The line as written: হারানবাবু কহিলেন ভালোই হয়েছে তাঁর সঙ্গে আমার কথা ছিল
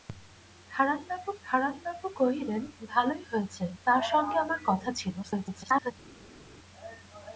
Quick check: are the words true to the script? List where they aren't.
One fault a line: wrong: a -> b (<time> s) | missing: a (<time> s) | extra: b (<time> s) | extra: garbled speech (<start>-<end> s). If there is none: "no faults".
extra: হারানবাবু (1.4 s)
extra: garbled speech (5.2-5.9 s)